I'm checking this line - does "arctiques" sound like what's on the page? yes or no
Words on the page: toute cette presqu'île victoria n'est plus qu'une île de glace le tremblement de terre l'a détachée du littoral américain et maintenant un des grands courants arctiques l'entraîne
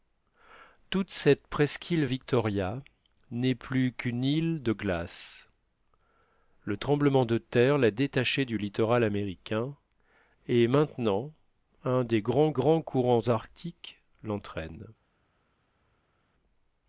yes